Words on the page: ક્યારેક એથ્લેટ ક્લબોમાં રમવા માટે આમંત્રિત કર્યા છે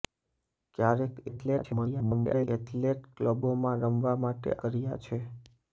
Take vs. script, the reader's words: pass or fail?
fail